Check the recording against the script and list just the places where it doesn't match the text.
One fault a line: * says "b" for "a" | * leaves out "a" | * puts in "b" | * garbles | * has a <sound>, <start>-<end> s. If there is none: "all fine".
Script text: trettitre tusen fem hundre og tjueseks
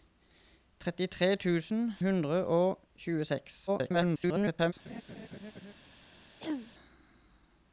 * leaves out "fem"
* garbles
* has a laugh, 4.8-5.7 s
* has a throat clearing, 6.4-6.7 s